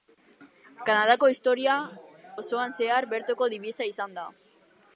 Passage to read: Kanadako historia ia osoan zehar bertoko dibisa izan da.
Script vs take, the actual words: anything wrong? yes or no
yes